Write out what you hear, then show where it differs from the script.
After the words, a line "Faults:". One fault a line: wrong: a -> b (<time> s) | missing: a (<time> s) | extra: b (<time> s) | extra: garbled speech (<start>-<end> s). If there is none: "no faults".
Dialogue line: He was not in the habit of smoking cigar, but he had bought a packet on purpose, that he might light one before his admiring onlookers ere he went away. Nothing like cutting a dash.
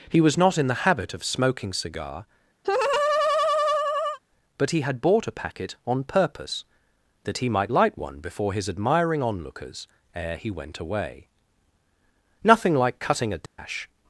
He was not in the habit of smoking cigar, but he had bought a packet on purpose, that he might light one before his admiring onlookers ere he went away. Nothing like cutting a dash.
Faults:
no faults